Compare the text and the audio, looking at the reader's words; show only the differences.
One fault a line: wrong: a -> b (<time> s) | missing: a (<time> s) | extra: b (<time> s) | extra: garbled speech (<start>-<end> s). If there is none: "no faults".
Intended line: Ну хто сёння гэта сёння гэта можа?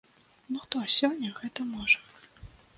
missing: сёння гэта (1.7 s)